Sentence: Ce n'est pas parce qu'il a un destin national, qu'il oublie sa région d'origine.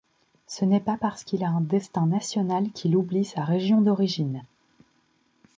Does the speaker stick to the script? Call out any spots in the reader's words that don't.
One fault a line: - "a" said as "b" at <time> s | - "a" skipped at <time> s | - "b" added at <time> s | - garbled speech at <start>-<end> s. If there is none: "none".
none